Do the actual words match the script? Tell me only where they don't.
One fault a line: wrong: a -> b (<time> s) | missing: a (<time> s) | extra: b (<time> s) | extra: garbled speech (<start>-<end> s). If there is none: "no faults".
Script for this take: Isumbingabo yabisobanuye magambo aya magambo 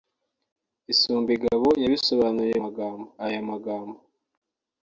no faults